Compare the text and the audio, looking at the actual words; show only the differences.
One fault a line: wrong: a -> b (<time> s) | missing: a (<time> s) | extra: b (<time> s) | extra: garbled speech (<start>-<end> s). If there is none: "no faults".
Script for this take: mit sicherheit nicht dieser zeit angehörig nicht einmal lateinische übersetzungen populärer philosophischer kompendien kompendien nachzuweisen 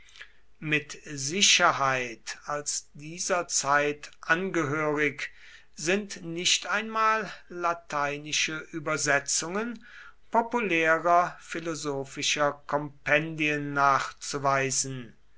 wrong: nicht -> als (2.5 s)
extra: sind (5.8 s)
missing: kompendien (13.7 s)